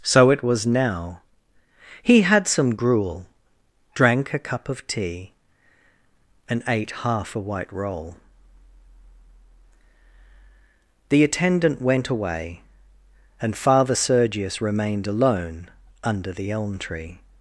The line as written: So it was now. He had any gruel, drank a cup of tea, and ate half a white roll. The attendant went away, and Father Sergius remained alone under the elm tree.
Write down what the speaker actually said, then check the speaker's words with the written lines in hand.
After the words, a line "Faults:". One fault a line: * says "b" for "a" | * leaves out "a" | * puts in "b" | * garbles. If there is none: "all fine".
So it was now. He had some gruel, drank a cup of tea, and ate half a white roll. The attendant went away, and Father Sergius remained alone under the elm tree.
Faults:
* says "some" for "any"